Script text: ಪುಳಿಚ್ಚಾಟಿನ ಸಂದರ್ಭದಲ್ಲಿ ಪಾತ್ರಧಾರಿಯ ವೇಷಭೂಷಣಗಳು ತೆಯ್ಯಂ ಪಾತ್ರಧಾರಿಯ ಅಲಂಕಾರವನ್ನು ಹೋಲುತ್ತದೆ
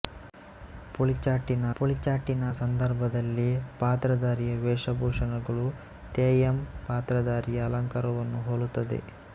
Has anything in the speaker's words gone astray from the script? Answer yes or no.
yes